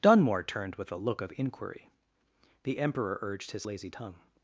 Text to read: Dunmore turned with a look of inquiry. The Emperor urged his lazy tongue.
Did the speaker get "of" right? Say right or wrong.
right